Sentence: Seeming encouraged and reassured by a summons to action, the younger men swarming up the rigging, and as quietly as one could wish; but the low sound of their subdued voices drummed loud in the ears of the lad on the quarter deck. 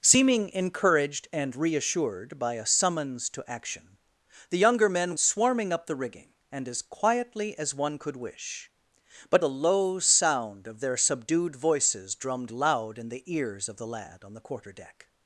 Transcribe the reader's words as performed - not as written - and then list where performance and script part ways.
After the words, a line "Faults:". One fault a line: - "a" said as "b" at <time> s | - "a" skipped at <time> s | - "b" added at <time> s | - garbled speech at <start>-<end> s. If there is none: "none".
Seeming encouraged and reassured by a summons to action, the younger men swarming up the rigging, and as quietly as one could wish; but the low sound of their subdued voices drummed loud in the ears of the lad on the quarter deck.
Faults:
none